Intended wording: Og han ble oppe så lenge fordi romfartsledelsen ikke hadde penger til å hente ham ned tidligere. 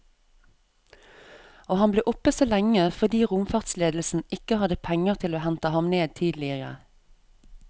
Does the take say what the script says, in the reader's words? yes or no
yes